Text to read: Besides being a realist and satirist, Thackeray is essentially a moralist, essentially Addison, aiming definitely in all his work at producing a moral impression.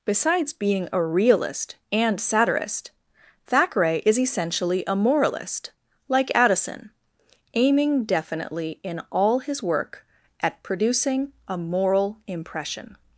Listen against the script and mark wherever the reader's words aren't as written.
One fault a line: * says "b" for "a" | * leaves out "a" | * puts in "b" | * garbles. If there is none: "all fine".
* says "like" for "essentially"